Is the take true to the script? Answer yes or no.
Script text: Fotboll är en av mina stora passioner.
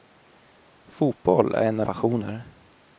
no